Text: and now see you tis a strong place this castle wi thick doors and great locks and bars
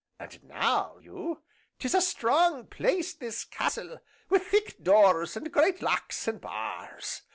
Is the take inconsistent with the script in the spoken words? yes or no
yes